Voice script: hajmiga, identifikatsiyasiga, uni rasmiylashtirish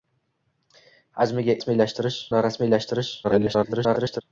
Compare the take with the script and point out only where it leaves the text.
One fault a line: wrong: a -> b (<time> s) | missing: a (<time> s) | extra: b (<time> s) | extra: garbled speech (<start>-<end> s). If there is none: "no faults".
wrong: identifikatsiyasiga -> rasmiylashtirish (1.6 s)
extra: garbled speech (3.2-4.2 s)